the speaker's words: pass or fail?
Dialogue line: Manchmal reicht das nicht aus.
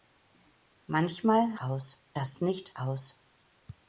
fail